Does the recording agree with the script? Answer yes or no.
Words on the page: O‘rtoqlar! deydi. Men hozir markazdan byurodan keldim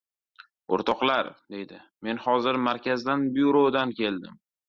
yes